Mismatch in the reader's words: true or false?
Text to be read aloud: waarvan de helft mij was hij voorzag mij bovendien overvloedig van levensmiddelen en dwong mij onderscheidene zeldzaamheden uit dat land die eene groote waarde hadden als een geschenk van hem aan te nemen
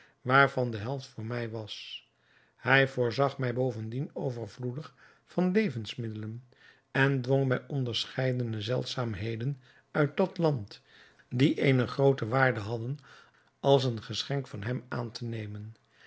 true